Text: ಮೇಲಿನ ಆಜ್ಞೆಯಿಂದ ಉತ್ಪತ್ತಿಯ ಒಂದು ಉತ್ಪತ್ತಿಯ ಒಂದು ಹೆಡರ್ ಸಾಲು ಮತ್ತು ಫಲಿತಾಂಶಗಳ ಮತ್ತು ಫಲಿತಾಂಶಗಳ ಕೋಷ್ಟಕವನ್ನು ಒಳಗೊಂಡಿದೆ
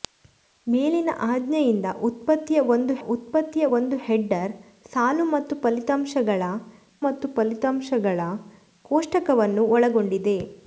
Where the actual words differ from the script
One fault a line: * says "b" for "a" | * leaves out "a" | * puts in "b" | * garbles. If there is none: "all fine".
all fine